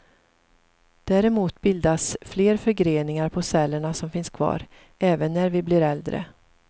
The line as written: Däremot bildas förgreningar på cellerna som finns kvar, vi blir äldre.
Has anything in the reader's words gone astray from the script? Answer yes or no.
yes